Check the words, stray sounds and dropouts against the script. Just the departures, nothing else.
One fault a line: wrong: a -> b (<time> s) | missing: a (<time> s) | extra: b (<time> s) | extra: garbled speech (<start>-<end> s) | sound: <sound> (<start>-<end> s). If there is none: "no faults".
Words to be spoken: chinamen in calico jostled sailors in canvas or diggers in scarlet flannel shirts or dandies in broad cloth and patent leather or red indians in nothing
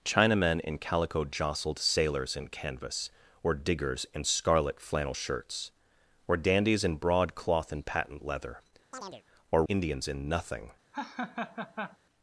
sound: chirp (8.9-9.2 s)
missing: red (9.6 s)
sound: laugh (10.9-12.0 s)